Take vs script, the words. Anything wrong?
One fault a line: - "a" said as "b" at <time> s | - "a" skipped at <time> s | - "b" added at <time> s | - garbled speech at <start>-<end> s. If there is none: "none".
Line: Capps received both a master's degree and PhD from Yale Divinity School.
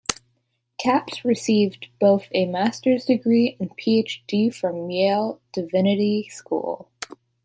none